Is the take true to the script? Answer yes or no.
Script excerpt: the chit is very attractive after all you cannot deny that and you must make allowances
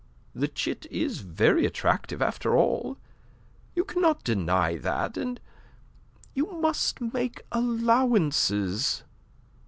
yes